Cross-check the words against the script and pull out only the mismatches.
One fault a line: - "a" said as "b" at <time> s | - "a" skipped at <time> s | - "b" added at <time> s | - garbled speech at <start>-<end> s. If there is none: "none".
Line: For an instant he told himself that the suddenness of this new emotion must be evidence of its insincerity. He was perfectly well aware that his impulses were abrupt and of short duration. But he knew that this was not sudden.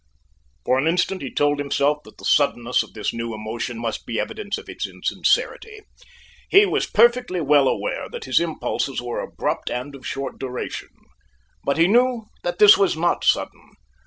none